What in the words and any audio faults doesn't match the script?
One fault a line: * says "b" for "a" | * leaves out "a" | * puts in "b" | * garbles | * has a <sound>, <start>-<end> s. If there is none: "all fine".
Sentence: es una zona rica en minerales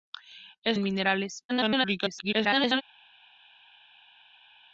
* leaves out "una zona rica"
* garbles